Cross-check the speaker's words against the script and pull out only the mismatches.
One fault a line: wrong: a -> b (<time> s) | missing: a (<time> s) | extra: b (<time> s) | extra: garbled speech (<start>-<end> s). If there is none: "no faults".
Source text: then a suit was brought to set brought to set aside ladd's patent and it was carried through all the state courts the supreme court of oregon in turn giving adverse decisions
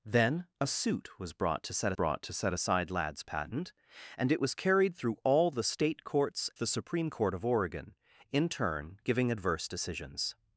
no faults